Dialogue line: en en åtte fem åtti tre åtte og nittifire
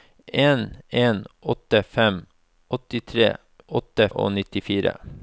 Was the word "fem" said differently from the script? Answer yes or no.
no